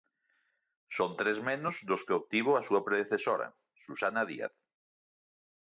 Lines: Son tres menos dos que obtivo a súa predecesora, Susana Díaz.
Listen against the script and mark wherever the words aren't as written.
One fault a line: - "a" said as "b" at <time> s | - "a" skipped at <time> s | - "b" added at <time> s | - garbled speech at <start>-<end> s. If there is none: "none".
none